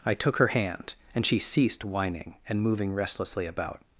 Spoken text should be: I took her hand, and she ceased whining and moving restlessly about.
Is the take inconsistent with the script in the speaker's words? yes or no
no